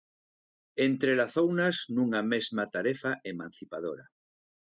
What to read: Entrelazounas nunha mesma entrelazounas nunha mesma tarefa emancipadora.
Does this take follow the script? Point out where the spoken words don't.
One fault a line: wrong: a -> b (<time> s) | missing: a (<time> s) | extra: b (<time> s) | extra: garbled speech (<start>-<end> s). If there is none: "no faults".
missing: entrelazounas nunha mesma (2.6 s)